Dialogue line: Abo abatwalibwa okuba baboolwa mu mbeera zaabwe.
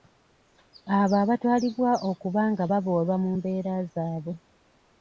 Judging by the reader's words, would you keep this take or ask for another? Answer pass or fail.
fail